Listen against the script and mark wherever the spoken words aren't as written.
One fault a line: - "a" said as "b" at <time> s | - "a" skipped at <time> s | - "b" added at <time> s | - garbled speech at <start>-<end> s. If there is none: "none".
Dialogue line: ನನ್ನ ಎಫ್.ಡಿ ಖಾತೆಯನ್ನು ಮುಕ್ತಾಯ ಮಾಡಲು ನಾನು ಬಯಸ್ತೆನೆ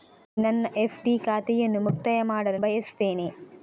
- "ನಾನು" skipped at 2.6 s